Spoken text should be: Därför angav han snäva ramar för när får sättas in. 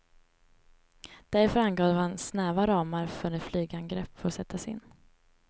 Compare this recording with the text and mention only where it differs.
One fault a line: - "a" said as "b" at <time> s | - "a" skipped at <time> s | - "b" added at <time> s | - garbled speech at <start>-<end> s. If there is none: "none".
- "flygangrepp" added at 3.4 s